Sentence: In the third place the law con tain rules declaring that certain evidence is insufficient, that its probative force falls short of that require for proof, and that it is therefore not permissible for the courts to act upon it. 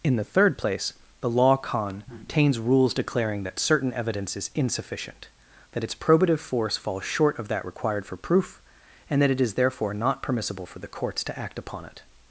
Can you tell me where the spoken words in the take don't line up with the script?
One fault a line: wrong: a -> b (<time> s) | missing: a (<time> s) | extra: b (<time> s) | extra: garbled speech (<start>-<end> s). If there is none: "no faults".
wrong: tain -> tains (2.2 s)
wrong: require -> required (7.7 s)